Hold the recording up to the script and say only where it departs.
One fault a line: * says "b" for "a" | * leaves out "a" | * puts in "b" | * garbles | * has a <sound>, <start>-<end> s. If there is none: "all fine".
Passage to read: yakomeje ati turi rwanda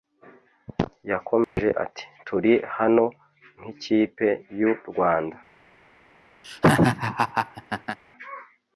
* has a dropout, 1.4-1.6 s
* puts in "hano nk'ikipe y'u"
* has a laugh, 6.4-8.0 s